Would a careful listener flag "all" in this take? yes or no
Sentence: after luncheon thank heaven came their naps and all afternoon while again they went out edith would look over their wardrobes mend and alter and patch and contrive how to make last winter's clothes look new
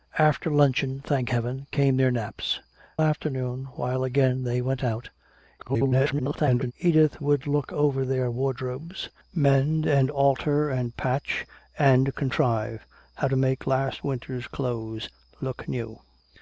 yes